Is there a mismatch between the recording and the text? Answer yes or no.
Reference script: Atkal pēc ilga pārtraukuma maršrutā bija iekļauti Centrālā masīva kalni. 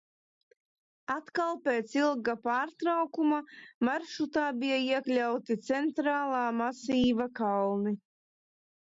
no